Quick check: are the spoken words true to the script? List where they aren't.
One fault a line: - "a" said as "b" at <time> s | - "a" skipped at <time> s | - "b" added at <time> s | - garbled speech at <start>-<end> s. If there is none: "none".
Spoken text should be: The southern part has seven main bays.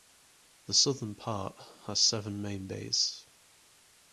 none